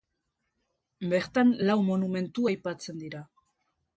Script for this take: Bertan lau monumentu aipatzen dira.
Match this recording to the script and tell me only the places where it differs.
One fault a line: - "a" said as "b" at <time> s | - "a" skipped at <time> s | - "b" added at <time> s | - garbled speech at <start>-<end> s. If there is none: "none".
none